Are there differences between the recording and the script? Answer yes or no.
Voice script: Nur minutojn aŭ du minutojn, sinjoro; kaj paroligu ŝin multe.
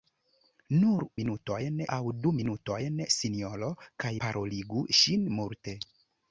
no